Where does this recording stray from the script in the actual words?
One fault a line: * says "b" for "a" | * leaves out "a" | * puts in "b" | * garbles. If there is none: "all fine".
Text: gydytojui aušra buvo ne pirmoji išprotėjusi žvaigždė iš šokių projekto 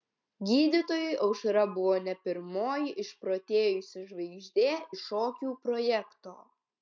all fine